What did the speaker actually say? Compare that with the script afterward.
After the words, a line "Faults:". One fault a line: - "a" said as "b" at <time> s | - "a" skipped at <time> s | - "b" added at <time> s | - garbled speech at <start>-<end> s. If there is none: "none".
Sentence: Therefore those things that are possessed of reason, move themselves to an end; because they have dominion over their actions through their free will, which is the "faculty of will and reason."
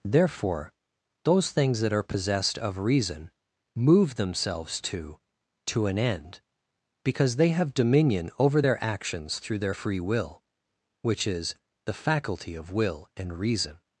Therefore those things that are possessed of reason, move themselves to to an end; because they have dominion over their actions through their free will, which is the "faculty of will and reason."
Faults:
- "to" added at 5.7 s